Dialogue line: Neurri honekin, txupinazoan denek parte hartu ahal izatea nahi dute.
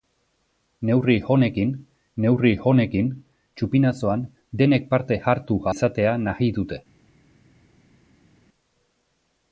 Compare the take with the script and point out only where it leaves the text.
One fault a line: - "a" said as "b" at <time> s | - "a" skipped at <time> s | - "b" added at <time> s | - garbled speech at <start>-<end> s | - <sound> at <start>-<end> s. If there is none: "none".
- "neurri honekin" added at 2.2 s
- "ahal" skipped at 5.6 s